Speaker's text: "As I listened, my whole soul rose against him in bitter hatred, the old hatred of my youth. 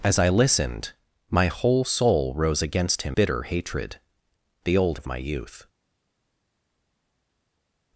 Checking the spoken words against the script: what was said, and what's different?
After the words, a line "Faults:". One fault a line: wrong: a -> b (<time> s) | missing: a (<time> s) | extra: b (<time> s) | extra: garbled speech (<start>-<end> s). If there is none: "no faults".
"As I listened, my whole soul rose against him bitter hatred, the old of my youth.
Faults:
missing: in (3.2 s)
missing: hatred (5.0 s)